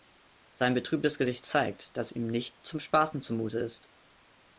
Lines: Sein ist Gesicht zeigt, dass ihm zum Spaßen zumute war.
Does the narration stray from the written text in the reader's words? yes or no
yes